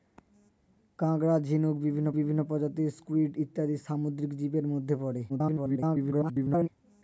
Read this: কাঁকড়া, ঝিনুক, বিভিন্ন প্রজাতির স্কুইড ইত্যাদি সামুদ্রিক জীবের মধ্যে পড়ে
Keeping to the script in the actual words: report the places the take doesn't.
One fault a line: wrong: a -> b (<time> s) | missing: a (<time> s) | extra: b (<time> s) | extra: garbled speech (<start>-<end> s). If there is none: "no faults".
extra: বিভিন্ন (2.2 s)
extra: garbled speech (5.3-6.7 s)